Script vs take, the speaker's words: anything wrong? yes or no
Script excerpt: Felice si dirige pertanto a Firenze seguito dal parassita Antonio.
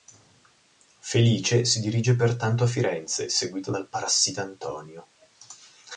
no